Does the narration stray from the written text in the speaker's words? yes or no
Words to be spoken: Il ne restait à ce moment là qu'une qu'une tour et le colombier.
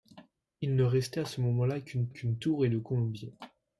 no